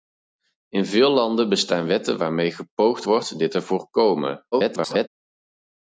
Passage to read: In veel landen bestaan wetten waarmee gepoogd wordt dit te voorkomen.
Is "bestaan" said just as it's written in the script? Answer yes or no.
yes